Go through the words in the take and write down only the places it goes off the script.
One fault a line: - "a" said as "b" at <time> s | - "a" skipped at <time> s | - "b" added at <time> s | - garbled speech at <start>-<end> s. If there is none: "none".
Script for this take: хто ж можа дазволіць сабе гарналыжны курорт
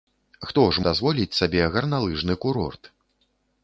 - "можа" skipped at 0.8 s